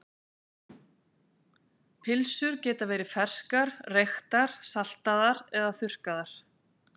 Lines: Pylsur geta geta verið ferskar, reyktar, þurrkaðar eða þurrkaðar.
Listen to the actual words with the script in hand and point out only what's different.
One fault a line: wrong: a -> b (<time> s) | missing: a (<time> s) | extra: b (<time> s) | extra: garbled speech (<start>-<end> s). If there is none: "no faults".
missing: geta (2.9 s)
wrong: þurrkaðar -> saltaðar (4.7 s)